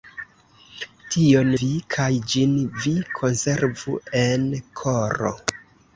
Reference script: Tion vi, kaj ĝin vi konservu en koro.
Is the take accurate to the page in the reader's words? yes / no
yes